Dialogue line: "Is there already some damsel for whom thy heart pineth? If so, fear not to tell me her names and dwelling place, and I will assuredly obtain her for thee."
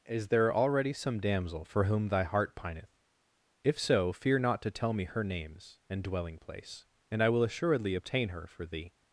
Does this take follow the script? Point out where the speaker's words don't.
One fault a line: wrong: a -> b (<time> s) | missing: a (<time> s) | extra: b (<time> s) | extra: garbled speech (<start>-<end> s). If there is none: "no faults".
no faults